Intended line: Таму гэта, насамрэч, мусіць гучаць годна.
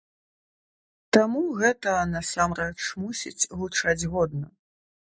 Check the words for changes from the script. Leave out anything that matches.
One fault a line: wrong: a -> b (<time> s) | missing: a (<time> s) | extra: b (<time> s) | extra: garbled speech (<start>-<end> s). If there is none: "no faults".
no faults